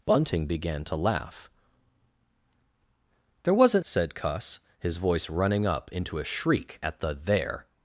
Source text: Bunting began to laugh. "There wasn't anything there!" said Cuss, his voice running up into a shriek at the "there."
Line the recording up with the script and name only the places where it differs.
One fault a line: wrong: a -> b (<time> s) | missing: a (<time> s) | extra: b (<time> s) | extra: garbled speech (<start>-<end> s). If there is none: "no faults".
missing: anything there (3.9 s)